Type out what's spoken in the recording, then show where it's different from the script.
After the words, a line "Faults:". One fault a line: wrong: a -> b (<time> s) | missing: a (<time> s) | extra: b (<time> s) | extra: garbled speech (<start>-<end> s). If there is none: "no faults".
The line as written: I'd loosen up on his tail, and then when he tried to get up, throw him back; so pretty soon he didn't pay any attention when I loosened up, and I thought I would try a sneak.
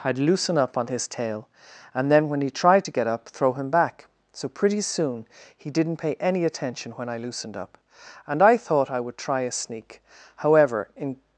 I'd loosen up on his tail, and then when he tried to get up, throw him back; so pretty soon he didn't pay any attention when I loosened up, and I thought I would try a sneak. However, in
Faults:
extra: However in (10.3 s)